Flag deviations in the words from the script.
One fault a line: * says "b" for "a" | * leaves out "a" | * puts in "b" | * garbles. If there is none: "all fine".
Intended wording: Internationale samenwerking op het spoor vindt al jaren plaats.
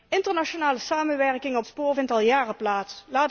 * leaves out "het"